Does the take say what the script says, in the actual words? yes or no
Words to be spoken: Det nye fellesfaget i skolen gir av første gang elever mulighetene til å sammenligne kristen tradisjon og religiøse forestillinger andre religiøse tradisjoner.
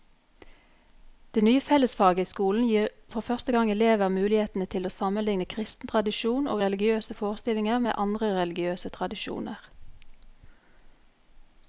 no